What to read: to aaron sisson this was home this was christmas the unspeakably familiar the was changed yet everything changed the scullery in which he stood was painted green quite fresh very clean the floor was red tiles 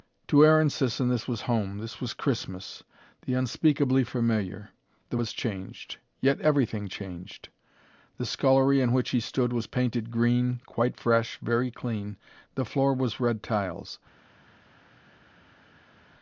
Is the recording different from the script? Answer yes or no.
no